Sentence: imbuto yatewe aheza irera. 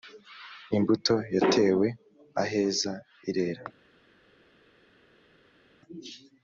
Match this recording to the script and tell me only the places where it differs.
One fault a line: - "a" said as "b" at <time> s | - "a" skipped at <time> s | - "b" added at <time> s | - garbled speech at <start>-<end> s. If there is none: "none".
none